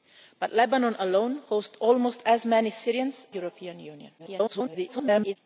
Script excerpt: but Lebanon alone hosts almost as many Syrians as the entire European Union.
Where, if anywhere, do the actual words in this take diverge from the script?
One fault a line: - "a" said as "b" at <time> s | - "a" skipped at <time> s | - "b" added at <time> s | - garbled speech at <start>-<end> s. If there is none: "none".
- "as the entire" skipped at 3.3 s
- garbled speech at 4.2-5.4 s